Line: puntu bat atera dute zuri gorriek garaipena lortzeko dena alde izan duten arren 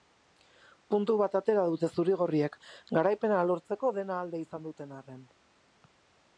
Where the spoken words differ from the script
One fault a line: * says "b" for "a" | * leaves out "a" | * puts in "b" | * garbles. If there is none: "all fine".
all fine